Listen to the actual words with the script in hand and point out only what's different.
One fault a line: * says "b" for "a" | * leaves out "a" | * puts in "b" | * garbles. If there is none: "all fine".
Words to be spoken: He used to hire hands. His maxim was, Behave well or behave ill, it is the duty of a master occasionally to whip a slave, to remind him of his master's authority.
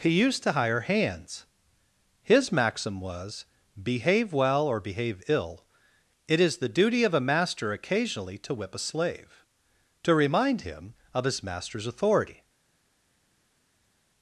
all fine